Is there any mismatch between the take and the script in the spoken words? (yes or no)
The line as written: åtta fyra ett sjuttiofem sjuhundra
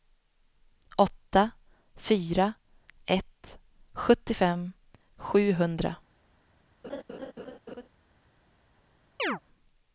no